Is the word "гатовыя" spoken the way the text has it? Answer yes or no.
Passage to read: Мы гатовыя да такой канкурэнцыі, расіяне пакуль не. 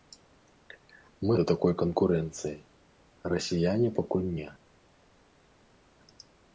no